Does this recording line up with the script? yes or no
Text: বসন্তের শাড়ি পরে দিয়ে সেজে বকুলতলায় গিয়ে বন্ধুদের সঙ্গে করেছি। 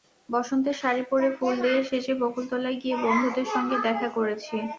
no